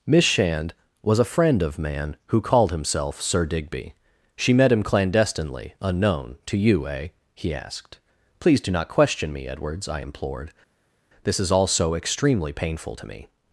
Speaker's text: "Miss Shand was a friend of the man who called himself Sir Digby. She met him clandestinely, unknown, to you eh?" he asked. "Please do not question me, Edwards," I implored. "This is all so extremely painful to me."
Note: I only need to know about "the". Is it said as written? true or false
false